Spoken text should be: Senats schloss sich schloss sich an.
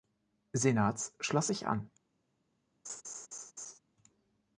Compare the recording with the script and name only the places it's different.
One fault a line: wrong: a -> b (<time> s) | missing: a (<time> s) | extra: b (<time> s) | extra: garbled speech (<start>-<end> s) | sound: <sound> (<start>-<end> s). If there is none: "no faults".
missing: schloss sich (1.7 s)
sound: laugh (2.8-3.8 s)